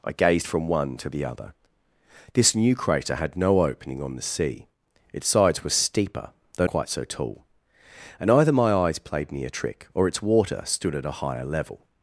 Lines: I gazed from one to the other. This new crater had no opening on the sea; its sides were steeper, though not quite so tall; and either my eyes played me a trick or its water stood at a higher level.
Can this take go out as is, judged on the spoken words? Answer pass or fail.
fail